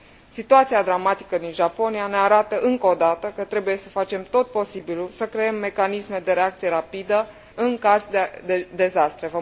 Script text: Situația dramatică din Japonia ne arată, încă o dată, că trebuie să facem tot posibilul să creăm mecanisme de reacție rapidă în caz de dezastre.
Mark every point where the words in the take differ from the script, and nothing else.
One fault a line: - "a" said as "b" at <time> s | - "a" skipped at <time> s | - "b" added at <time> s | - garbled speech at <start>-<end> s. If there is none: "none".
none